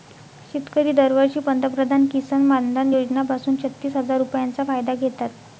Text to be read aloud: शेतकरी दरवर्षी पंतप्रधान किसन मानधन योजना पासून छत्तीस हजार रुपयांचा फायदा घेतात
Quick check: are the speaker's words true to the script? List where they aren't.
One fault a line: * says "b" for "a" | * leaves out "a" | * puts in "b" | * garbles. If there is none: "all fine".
all fine